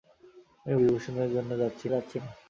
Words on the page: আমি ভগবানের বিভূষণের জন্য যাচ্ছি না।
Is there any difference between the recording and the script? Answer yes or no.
yes